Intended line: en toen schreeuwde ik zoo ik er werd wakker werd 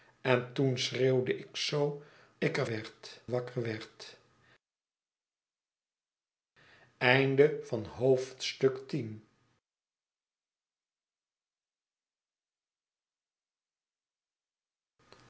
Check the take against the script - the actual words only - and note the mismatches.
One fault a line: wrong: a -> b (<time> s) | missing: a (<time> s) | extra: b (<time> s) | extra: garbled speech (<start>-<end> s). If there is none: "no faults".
no faults